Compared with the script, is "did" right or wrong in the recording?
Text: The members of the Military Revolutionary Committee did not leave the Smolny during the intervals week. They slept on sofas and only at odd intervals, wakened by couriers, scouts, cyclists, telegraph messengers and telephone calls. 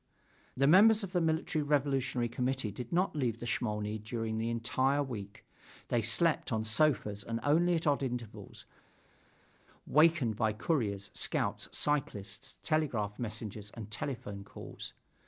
right